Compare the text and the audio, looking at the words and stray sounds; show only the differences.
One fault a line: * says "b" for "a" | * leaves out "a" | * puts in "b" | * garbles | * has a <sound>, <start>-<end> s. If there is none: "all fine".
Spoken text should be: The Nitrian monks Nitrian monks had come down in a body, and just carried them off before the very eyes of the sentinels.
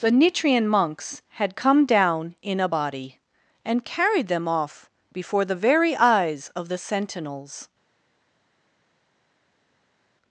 * leaves out "Nitrian monks"
* leaves out "just"